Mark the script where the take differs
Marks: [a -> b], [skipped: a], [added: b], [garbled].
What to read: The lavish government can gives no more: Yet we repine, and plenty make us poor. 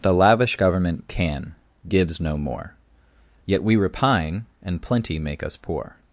The lavish government can gives no more: Yet we repine, and plenty make us poor.